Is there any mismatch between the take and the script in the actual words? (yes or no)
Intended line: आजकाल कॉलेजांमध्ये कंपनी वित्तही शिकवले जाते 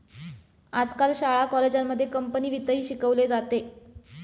yes